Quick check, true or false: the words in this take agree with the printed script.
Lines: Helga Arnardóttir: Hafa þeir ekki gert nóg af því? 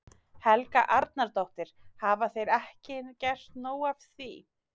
true